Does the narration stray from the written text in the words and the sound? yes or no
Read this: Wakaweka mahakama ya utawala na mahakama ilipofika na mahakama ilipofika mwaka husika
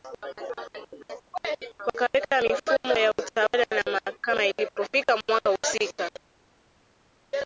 yes